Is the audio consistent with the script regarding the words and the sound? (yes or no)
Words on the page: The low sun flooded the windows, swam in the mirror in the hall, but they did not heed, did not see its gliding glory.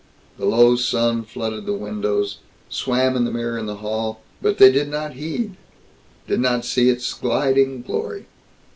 yes